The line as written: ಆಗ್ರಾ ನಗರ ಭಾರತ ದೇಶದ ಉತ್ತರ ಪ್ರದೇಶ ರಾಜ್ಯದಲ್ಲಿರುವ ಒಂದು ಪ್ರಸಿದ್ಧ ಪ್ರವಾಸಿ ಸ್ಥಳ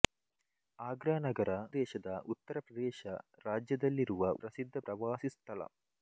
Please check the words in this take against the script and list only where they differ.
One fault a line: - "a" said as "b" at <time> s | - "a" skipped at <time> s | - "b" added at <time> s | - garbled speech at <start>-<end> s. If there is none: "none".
- "ಭಾರತ" skipped at 1.5 s
- "ಒಂದು" skipped at 4.3 s